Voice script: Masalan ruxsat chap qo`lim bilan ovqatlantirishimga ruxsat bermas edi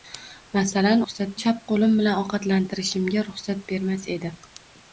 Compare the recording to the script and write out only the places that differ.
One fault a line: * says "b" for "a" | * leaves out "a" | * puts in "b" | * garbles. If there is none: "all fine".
all fine